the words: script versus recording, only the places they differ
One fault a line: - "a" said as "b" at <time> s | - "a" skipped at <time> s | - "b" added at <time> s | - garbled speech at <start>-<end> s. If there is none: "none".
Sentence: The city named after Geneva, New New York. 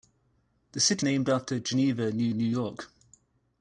none